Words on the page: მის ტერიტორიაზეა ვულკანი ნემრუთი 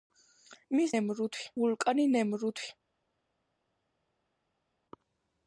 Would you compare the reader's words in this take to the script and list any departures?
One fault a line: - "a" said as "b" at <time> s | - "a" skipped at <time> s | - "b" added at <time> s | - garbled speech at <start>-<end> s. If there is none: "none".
- "ტერიტორიაზეა" said as "ნემრუთი" at 0.9 s